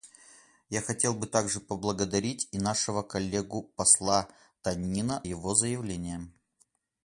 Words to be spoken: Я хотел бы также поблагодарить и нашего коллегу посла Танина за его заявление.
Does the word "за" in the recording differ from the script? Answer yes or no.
yes